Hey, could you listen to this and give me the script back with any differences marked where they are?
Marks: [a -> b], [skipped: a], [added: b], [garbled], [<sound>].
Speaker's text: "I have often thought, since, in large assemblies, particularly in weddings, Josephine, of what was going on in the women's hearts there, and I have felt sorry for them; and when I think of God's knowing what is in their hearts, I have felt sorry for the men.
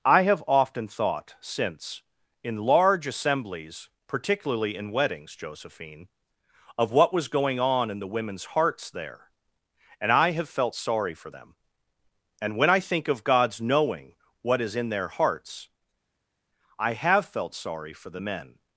"I have often thought, since, in large assemblies, particularly in weddings, Josephine, of what was going on in the women's hearts there, and I have felt sorry for them; and when I think of God's knowing what is in their hearts, I have felt sorry for the men.